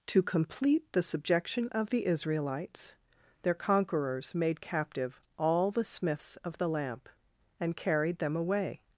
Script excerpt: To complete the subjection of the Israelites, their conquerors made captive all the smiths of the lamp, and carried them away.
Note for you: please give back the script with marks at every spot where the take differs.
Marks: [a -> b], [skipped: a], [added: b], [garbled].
To complete the subjection of the Israelites, their conquerors made captive all the smiths of the lamp, and carried them away.